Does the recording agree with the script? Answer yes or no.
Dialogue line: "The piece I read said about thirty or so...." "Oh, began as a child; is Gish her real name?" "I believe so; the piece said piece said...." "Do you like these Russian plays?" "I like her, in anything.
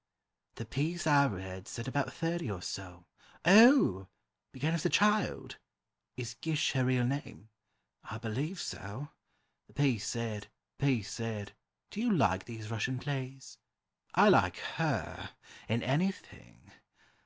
yes